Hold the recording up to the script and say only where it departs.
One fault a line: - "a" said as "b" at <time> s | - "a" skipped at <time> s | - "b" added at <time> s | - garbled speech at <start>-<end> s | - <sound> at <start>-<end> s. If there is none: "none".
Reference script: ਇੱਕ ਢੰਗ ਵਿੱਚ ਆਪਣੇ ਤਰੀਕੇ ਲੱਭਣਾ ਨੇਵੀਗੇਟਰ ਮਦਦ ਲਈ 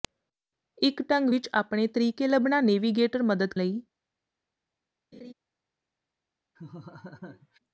- laugh at 5.1-5.3 s
- laugh at 6.6-7.6 s